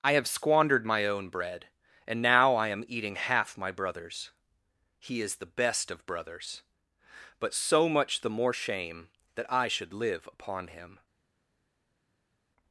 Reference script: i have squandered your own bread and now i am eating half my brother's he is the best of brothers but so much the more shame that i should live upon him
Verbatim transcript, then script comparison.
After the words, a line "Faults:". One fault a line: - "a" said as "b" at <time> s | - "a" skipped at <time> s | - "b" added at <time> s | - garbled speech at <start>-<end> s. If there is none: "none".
i have squandered my own bread and now i am eating half my brother's he is the best of brothers but so much the more shame that i should live upon him
Faults:
- "your" said as "my" at 0.8 s